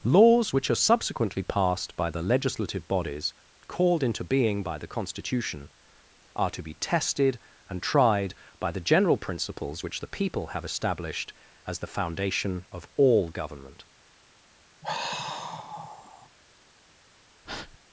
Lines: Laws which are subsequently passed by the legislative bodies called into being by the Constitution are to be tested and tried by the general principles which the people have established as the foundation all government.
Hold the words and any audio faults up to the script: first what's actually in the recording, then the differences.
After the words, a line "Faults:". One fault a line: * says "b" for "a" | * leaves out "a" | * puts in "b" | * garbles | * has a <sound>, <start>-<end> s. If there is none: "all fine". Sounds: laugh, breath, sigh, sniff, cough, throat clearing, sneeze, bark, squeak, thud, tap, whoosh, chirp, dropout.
Laws which are subsequently passed by the legislative bodies called into being by the Constitution are to be tested and tried by the general principles which the people have established as the foundation of all government.
Faults:
* puts in "of"
* has a sigh, 14.8-16.3 s
* has a breath, 17.4-17.8 s